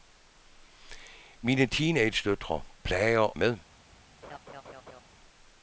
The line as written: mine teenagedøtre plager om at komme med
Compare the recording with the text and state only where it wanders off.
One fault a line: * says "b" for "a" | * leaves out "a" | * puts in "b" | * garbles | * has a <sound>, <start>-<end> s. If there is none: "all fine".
* leaves out "om at komme"
* has a laugh, 4.2-5.0 s